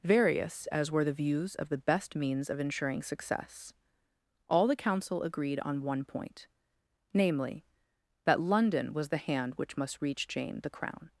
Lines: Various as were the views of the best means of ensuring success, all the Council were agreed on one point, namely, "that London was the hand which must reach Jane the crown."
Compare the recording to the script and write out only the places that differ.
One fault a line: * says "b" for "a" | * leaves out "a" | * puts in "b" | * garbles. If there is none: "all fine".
* leaves out "were"